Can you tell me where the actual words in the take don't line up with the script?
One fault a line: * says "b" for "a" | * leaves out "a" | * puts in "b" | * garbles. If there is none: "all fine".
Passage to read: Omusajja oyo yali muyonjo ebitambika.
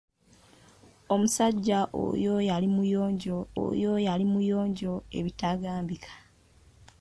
* puts in "oyo yali muyonjo"